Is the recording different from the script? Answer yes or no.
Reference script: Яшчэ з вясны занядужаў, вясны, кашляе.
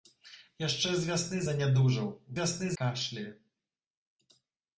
no